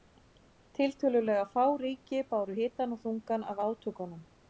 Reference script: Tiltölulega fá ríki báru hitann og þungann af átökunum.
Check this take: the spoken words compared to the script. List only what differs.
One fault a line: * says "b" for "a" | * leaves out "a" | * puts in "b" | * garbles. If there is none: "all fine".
all fine